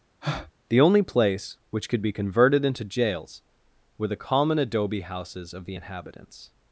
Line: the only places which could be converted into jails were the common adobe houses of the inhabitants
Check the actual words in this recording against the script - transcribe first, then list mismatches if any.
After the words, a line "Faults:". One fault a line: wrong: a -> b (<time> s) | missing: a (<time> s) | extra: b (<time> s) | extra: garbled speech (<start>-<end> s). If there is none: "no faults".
the only place which could be converted into jails were the common adobe houses of the inhabitants
Faults:
wrong: places -> place (1.0 s)